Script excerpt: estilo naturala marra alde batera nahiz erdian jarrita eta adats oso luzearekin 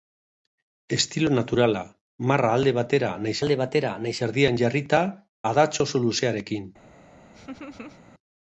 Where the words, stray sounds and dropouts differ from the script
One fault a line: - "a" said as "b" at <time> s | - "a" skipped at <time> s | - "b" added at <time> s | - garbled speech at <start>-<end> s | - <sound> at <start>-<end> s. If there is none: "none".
- "alde batera nahiz" added at 3.4 s
- "eta" skipped at 5.0 s
- laugh at 7.3-8.0 s